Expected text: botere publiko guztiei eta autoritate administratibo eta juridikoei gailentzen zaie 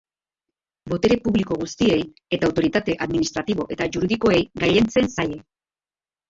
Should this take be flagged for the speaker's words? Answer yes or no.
no